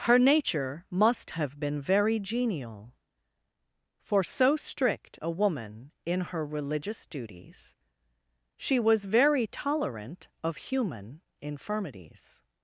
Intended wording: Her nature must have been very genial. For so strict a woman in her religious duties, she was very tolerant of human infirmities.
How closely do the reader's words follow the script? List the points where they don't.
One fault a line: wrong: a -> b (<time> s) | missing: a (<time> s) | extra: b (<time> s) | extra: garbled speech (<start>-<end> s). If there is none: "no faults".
no faults